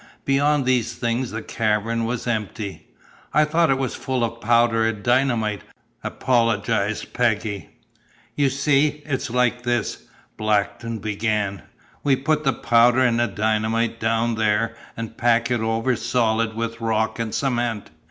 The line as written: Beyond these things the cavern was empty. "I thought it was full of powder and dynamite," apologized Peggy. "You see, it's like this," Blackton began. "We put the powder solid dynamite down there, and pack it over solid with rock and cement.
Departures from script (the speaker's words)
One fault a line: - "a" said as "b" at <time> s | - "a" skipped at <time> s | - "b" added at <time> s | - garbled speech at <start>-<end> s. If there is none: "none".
- "solid" said as "and" at 13.0 s